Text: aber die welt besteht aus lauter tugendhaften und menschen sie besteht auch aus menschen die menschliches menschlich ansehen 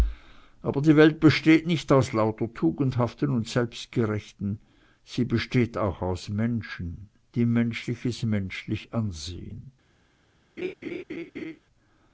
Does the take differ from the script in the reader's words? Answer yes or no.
yes